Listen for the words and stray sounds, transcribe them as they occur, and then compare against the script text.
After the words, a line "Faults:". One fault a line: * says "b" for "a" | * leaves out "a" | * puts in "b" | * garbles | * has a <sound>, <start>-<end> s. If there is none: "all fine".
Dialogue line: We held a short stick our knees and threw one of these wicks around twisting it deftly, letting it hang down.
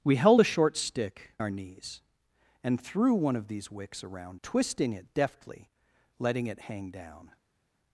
We held a short stick our knees and threw one of these wicks around twisting it deftly, letting it hang down.
Faults:
all fine